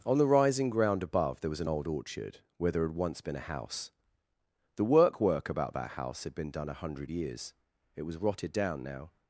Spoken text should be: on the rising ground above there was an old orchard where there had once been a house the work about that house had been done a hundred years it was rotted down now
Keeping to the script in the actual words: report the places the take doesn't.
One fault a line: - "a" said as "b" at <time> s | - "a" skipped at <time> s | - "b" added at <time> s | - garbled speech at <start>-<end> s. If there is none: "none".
- "work" added at 5.2 s